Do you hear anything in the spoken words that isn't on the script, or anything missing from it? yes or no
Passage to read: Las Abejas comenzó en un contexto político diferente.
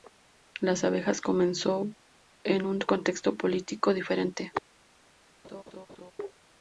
no